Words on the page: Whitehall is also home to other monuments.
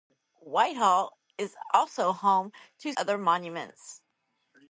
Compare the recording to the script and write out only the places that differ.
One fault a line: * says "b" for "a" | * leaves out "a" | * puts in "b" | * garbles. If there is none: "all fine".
all fine